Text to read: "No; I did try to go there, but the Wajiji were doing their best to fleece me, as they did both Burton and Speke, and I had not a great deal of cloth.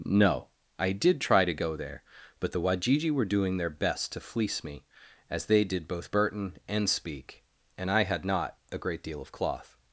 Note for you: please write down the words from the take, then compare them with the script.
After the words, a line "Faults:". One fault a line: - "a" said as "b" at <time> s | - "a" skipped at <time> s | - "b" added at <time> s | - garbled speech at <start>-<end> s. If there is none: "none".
"No; I did try to go there, but the Wajiji were doing their best to fleece me, as they did both Burton and Speke, and I had not a great deal of cloth.
Faults:
none